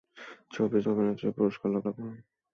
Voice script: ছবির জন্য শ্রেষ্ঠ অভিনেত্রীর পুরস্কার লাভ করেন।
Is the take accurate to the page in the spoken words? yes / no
no